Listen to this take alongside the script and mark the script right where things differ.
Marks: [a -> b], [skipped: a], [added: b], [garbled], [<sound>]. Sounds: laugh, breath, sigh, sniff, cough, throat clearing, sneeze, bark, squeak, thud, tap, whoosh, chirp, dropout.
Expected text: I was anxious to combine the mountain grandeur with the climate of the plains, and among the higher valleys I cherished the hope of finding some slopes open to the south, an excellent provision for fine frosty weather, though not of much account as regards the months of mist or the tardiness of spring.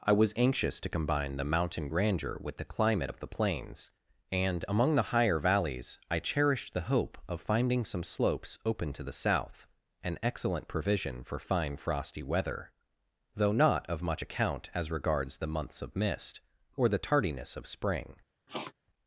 I was anxious to combine the mountain grandeur with the climate of the plains, and among the higher valleys I cherished the hope of finding some slopes open to the south, an excellent provision for fine frosty weather, though not of much account as regards the months of mist or the tardiness of spring. [sniff]